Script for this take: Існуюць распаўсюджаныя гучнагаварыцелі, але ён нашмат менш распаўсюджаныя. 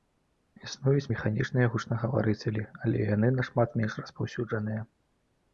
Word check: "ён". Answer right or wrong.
wrong